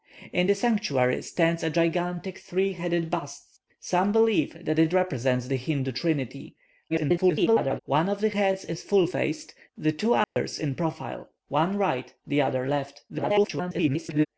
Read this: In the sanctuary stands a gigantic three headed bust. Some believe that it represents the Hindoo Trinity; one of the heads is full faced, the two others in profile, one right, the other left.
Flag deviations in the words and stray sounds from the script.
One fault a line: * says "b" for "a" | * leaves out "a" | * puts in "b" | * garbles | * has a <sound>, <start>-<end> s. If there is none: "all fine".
* garbles
* has a dropout, 10.2-10.4 s
* garbles